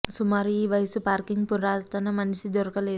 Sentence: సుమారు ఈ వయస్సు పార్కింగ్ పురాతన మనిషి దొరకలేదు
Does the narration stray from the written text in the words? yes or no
no